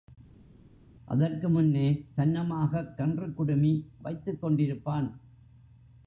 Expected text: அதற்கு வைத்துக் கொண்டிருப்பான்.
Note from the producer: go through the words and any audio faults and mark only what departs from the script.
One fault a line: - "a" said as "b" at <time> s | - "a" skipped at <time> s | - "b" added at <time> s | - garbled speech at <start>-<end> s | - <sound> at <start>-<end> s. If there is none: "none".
- "முன்னே சன்னமாகக் கன்றுக்குடுமி" added at 1.5 s